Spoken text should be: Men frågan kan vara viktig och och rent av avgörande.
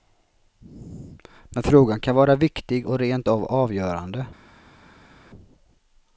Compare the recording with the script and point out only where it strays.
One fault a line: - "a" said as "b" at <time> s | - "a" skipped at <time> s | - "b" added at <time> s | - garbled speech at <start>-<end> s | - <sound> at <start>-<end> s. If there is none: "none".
- "och" skipped at 3.0 s